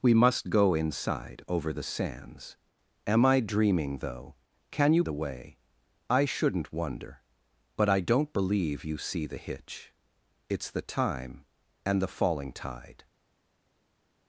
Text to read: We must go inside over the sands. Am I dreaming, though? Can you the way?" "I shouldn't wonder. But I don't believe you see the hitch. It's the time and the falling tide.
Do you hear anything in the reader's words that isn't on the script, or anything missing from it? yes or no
no